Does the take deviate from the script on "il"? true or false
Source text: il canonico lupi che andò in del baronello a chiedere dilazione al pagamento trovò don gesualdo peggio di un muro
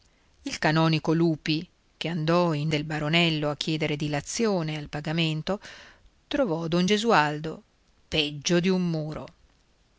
false